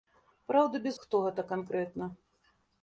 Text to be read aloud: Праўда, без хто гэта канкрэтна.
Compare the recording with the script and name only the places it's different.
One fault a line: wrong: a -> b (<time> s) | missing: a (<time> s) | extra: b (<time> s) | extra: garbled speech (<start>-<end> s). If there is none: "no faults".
no faults